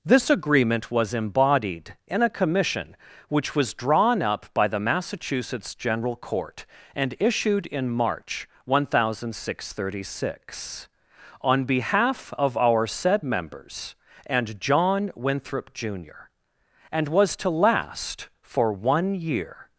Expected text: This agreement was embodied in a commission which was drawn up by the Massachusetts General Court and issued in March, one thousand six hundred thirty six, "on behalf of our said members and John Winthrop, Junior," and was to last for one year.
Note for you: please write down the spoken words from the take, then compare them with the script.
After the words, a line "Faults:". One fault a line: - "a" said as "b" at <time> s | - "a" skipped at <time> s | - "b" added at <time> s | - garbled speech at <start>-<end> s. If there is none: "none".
This agreement was embodied in a commission which was drawn up by the Massachusetts General Court and issued in March, one thousand six hundred thirty six, "on behalf of our said members and John Winthrop, Junior," and was to last for one year.
Faults:
none